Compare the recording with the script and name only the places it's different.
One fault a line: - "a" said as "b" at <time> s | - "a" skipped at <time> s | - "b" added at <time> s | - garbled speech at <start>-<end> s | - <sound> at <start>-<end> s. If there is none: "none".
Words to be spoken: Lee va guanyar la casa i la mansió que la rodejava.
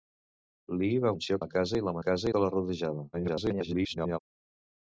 - "guanyar" said as "mansió" at 1.1 s
- "mansió" said as "casa" at 2.1 s
- garbled speech at 3.1-4.2 s